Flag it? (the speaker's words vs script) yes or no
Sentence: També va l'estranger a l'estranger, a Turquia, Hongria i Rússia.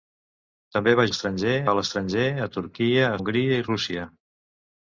no